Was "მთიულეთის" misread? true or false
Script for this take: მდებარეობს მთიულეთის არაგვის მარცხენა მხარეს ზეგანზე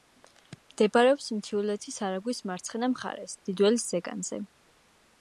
false